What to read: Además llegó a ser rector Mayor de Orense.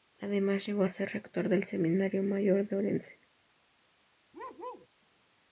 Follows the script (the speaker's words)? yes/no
no